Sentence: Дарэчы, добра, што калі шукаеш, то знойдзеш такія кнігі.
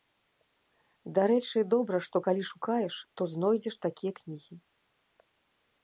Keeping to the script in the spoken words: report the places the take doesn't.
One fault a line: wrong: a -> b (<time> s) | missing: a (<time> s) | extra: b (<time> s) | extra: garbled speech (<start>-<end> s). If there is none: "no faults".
no faults